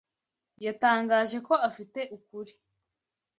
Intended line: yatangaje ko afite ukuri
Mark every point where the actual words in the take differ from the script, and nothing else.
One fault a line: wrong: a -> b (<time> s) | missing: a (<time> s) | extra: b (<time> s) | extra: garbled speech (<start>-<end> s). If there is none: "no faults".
no faults